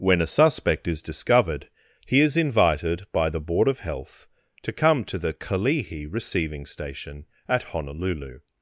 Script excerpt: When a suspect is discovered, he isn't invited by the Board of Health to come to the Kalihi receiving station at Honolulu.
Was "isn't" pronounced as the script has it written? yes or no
no